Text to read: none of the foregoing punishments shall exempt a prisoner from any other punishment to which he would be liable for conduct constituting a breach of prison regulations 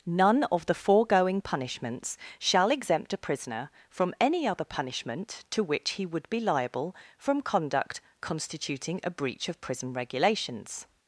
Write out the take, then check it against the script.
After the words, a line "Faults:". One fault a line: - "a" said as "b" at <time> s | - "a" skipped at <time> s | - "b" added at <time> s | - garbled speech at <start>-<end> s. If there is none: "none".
none of the foregoing punishments shall exempt a prisoner from any other punishment to which he would be liable from conduct constituting a breach of prison regulations
Faults:
- "for" said as "from" at 7.2 s